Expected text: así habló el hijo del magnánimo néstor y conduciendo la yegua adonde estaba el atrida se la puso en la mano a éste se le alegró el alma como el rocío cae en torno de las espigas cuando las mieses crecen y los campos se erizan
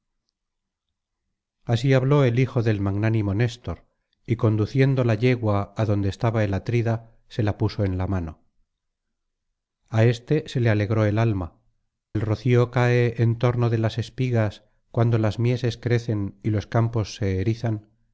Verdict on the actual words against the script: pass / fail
fail